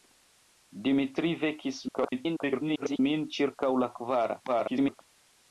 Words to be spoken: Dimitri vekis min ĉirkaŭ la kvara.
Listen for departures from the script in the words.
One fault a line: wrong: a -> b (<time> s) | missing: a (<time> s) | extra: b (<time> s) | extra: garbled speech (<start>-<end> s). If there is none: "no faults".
extra: garbled speech (1.9-3.0 s)
extra: garbled speech (4.5-5.0 s)